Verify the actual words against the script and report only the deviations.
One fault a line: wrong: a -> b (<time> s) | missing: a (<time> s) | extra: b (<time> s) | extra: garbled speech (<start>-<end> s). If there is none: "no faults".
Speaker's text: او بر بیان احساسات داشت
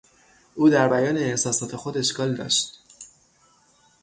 wrong: بر -> در (0.7 s)
extra: خود اشکال (1.7 s)